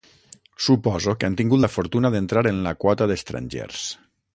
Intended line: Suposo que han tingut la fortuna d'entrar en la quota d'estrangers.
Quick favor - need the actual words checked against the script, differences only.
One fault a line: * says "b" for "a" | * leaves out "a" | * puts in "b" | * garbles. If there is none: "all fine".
all fine